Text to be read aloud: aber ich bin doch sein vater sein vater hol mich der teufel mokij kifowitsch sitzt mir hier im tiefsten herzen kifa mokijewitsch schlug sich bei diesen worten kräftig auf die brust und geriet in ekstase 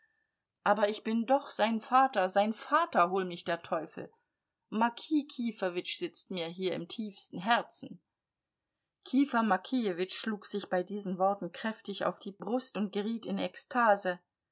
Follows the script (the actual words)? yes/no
yes